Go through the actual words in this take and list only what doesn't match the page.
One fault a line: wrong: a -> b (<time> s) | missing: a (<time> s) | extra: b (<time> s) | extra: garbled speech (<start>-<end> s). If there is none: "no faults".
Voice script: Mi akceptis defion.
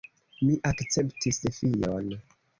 no faults